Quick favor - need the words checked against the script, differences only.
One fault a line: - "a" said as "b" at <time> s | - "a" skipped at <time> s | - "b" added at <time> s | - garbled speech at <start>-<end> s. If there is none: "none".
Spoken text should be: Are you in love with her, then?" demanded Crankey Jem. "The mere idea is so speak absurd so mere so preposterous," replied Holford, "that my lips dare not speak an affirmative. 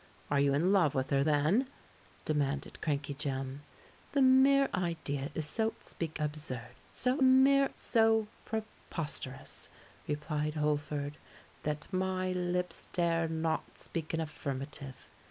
none